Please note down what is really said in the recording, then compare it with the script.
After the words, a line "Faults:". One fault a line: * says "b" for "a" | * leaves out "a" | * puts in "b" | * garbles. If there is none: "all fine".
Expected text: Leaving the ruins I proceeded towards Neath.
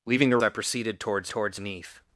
Leaving the I proceeded towards towards Neath.
Faults:
* leaves out "ruins"
* puts in "towards"